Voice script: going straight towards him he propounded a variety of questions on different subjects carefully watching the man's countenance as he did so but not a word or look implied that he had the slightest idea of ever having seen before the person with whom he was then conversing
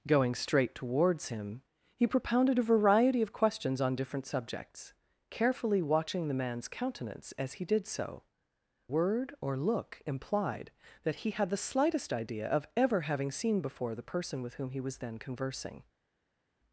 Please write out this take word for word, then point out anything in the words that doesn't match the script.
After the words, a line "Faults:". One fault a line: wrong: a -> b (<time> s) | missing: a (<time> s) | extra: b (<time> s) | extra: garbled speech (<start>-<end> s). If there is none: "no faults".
going straight towards him he propounded a variety of questions on different subjects carefully watching the man's countenance as he did so word or look implied that he had the slightest idea of ever having seen before the person with whom he was then conversing
Faults:
missing: but not a (8.2 s)